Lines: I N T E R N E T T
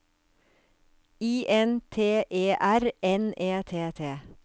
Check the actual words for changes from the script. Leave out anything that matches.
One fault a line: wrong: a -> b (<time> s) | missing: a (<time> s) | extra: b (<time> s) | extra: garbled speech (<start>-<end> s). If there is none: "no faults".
no faults